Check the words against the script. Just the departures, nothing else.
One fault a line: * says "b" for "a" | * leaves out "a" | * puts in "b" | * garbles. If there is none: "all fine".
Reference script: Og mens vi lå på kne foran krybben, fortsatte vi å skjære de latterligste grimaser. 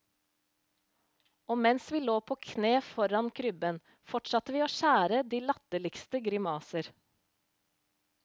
all fine